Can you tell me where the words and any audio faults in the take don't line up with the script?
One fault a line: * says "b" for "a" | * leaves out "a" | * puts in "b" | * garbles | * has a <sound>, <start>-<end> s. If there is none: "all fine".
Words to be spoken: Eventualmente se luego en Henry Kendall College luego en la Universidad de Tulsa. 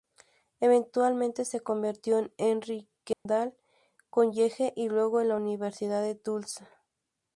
* says "convirtió" for "luego"
* has a dropout, 3.1-3.3 s
* puts in "y"